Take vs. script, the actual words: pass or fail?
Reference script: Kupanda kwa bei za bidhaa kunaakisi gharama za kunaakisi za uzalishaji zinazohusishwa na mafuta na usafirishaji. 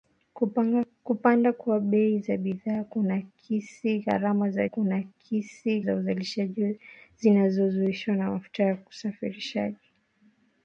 pass